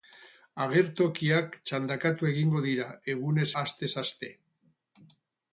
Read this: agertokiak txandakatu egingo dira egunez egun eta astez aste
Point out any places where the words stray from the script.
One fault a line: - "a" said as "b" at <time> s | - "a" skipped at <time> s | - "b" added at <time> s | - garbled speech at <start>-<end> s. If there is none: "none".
- "egun eta" skipped at 3.5 s